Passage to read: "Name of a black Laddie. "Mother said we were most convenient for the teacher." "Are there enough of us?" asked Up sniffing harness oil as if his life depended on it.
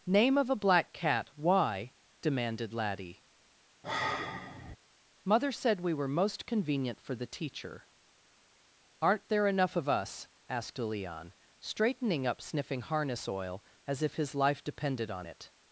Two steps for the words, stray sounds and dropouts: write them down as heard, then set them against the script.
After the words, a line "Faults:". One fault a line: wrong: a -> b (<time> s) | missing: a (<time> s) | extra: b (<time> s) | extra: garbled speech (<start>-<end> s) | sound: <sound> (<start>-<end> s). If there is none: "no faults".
"Name of a black cat, why?" demanded Laddie. "Mother said we were most convenient for the teacher." "Aren't there enough of us?" asked Leon, straightening up sniffing harness oil as if his life depended on it.
Faults:
extra: cat why demanded (0.9 s)
sound: sigh (3.8-4.8 s)
wrong: Are -> Aren't (9.0 s)
extra: Leon straightening (10.8 s)